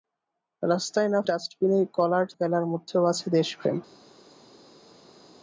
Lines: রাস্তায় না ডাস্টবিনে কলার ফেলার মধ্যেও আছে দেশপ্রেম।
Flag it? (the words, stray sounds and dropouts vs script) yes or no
no